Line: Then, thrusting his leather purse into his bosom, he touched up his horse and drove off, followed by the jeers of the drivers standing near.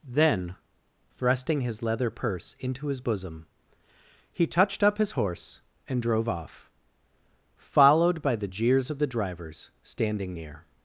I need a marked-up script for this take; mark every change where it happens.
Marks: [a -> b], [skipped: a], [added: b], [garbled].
Then, thrusting his leather purse into his bosom, he touched up his horse and drove off, followed by the jeers of the drivers standing near.